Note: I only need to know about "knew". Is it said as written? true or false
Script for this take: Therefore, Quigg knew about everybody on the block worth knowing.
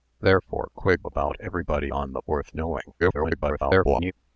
false